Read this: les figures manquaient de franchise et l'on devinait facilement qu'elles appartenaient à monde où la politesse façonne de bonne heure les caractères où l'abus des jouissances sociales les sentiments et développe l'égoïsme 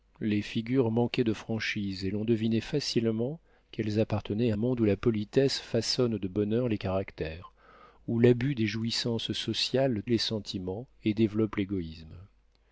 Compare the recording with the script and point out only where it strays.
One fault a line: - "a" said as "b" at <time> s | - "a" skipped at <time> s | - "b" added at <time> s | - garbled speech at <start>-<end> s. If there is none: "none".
none